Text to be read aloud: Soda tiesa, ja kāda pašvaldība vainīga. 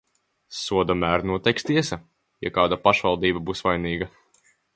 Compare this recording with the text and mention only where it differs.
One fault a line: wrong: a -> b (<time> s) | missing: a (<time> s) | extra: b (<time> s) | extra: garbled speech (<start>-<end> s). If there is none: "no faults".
extra: mēru noteiks (1.0 s)
extra: būs (3.5 s)